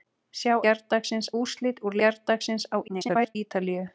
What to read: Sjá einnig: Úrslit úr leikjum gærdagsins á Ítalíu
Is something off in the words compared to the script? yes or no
yes